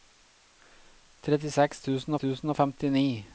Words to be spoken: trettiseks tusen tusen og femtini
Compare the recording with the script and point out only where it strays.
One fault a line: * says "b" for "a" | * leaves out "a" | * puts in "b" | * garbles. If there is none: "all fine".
all fine